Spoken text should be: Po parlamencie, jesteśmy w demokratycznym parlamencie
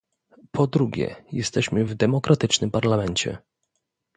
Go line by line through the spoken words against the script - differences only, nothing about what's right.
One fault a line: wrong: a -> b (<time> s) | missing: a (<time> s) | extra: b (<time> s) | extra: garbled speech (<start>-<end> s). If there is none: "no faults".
wrong: parlamencie -> drugie (0.7 s)